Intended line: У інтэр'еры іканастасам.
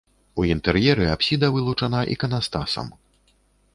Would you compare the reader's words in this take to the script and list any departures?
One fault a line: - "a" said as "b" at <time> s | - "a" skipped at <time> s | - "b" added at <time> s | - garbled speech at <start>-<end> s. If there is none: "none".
- "апсіда вылучана" added at 1.1 s